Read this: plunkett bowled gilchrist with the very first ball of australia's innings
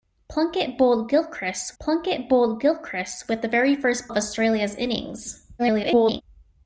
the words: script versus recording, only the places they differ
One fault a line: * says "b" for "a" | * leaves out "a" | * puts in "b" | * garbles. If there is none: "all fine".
* puts in "plunkett bowled gilchrist"
* leaves out "ball"
* garbles